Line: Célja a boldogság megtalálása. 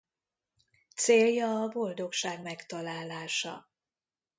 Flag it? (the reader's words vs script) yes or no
no